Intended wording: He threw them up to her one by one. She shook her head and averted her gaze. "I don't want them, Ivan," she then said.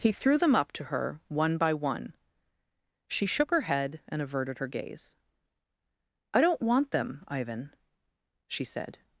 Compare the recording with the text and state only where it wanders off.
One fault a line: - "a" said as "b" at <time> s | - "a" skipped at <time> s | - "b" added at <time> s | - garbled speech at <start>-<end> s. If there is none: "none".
- "then" skipped at 8.6 s